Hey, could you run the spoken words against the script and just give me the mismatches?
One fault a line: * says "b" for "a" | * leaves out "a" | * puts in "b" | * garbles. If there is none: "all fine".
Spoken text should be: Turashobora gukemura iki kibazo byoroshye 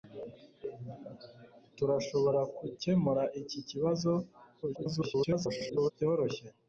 * garbles